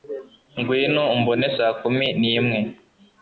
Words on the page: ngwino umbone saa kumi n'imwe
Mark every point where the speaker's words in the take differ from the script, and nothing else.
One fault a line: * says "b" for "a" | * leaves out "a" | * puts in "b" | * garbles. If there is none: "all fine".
all fine